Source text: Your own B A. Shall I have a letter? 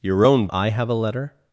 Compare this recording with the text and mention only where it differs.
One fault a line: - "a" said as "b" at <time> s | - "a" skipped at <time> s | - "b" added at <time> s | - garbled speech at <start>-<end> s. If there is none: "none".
- "B A Shall" skipped at 0.5 s